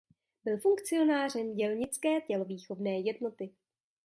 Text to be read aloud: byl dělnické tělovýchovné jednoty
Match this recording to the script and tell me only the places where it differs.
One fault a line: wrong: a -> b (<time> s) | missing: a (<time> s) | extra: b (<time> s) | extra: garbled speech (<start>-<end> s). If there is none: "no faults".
extra: funkcionářem (0.5 s)